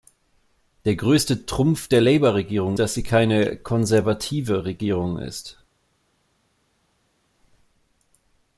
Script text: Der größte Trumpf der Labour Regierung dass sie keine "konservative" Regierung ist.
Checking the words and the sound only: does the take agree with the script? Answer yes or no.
yes